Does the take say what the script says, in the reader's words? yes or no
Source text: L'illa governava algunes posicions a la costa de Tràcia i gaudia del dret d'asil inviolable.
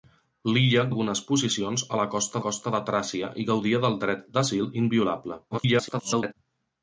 no